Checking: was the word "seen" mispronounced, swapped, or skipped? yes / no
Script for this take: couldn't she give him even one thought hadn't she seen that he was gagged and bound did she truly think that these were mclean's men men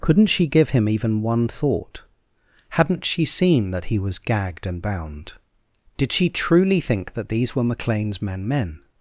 no